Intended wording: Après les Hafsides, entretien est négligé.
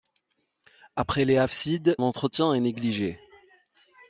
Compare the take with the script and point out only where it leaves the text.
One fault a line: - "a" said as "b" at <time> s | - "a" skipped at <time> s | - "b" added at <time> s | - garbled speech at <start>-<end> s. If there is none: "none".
none